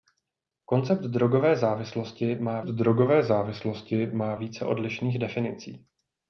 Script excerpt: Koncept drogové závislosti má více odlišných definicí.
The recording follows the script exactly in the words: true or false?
false